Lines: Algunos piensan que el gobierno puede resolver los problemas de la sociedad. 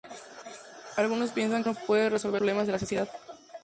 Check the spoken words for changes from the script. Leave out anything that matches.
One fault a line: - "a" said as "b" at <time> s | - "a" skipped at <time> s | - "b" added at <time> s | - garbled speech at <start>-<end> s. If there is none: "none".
- "los" skipped at 2.4 s